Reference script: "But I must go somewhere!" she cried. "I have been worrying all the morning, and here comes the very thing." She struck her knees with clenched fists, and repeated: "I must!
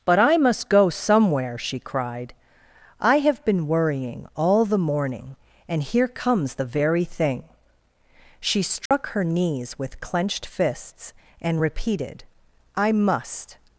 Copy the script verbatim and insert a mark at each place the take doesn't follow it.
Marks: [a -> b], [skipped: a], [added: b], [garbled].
"But I must go somewhere!" she cried. "I have been worrying all the morning, and here comes the very thing." She struck her knees with clenched fists, and repeated: "I must!